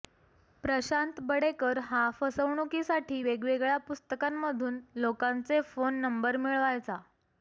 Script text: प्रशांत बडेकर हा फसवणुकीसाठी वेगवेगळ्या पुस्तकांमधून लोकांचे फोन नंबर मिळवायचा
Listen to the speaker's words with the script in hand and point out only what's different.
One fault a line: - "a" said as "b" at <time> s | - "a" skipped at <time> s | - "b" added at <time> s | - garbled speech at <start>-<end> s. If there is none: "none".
none